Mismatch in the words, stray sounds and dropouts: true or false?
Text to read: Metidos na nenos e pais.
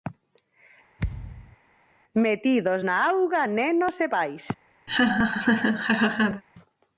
true